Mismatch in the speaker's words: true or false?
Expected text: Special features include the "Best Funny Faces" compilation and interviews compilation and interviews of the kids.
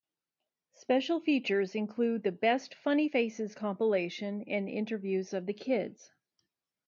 true